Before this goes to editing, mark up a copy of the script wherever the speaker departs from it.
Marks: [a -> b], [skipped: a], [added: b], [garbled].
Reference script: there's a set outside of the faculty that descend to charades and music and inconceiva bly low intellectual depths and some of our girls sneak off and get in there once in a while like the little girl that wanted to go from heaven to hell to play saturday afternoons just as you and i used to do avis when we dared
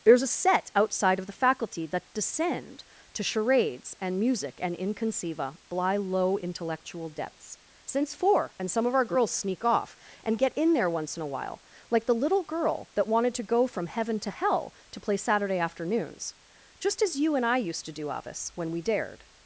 there's a set outside of the faculty that descend to charades and music and inconceiva bly low intellectual depths [added: since four] and some of our girls sneak off and get in there once in a while like the little girl that wanted to go from heaven to hell to play saturday afternoons just as you and i used to do avis when we dared